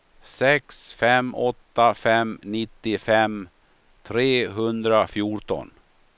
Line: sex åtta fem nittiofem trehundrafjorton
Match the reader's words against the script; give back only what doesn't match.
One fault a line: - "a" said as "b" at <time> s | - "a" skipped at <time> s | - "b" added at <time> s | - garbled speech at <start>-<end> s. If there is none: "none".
- "fem" added at 0.9 s